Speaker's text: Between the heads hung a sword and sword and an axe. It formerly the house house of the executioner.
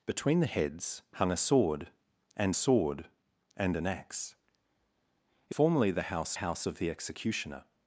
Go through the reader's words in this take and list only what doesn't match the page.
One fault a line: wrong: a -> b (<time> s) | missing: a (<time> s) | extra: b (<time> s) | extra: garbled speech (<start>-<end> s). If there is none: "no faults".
no faults